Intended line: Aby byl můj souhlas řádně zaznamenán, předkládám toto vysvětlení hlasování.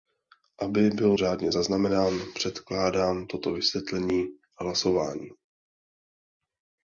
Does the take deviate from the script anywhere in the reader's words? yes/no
yes